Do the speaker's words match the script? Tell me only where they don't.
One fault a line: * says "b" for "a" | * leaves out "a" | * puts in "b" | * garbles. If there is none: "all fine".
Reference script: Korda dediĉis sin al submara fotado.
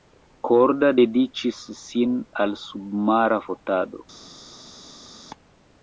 all fine